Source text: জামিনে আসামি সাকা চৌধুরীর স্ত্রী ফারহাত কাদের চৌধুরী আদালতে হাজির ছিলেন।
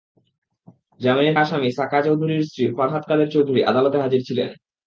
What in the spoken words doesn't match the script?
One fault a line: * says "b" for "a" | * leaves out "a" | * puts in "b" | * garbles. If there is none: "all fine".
all fine